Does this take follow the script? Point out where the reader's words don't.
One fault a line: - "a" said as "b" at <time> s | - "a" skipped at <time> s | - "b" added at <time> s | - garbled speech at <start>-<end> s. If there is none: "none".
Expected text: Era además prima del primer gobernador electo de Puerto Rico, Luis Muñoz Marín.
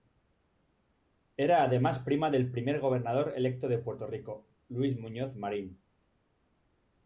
none